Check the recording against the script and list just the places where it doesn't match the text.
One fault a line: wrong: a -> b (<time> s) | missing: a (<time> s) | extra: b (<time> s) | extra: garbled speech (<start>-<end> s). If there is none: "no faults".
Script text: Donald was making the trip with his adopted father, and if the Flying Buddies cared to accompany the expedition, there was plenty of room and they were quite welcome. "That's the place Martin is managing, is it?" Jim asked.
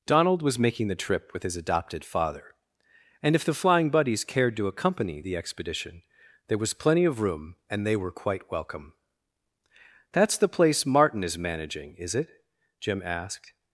no faults